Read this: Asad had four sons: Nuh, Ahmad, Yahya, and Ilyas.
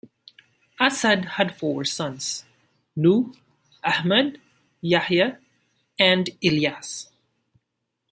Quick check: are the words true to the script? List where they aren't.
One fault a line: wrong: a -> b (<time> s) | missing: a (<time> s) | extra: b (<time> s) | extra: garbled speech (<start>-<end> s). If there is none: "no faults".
no faults